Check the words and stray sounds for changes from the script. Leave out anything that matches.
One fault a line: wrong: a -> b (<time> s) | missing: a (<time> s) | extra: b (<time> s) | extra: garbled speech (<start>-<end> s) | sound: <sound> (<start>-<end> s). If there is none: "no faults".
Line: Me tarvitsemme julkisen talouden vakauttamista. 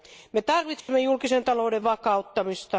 sound: dropout (0.8-0.9 s)